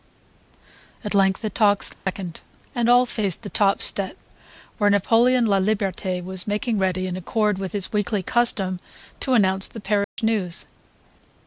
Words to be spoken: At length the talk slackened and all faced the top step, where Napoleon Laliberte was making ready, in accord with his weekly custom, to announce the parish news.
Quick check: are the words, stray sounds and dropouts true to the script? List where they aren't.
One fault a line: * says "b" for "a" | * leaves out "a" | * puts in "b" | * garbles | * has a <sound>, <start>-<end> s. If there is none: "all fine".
* has a dropout, 1.9-2.1 s
* has a dropout, 10.0-10.2 s